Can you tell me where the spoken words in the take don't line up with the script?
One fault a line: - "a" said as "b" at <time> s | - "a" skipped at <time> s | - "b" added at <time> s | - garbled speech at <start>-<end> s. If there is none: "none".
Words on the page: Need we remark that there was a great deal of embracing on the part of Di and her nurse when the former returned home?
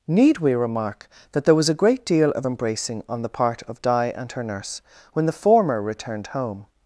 none